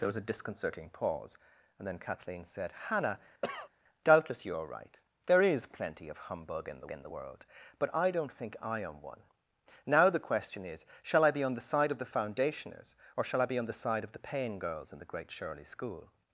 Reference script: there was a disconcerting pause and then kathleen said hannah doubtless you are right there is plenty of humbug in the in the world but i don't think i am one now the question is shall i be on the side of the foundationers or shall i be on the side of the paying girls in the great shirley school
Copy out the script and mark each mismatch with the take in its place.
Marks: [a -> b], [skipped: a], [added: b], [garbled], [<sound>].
there was a disconcerting pause and then kathleen said hannah [cough] doubtless you are right there is plenty of humbug in the in the world but i don't think i am one now the question is shall i be on the side of the foundationers or shall i be on the side of the paying girls in the great shirley school